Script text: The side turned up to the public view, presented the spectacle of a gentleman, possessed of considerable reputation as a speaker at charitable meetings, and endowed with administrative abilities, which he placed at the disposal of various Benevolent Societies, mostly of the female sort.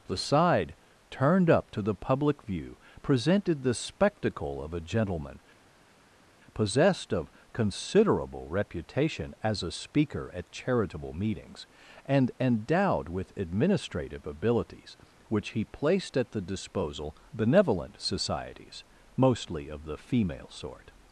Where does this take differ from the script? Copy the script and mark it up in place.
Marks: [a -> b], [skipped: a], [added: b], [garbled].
The side turned up to the public view, presented the spectacle of a gentleman, possessed of considerable reputation as a speaker at charitable meetings, and endowed with administrative abilities, which he placed at the disposal [skipped: of various] Benevolent Societies, mostly of the female sort.